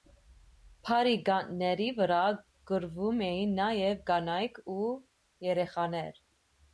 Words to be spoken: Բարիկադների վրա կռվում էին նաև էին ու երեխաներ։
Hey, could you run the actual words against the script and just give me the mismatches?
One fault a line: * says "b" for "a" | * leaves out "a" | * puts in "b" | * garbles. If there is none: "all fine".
* says "կանայք" for "էին"